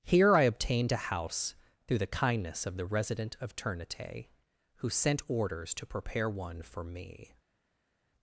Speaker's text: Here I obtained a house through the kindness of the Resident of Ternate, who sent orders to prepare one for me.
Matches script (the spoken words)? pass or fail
pass